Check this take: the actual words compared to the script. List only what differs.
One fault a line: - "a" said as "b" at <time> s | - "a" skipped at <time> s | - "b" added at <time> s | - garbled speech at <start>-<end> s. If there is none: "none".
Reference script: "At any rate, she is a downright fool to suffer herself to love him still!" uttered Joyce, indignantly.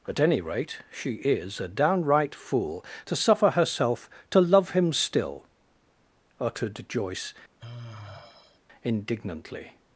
none